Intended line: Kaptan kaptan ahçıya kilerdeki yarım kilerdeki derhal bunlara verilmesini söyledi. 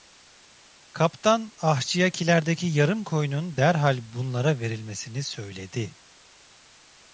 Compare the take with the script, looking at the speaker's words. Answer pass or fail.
fail